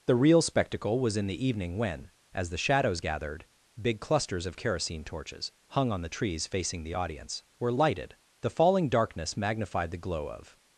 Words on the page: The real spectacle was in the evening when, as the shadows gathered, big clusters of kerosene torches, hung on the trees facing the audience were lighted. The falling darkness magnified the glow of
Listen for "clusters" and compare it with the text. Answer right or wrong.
right